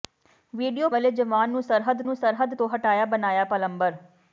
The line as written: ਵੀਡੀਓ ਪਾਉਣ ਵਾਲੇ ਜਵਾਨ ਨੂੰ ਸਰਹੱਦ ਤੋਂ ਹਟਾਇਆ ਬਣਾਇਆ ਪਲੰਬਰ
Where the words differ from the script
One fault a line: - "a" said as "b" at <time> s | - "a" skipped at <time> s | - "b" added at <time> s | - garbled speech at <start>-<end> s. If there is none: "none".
- "ਪਾਉਣ" skipped at 0.9 s
- "ਨੂੰ ਸਰਹੱਦ" added at 2.0 s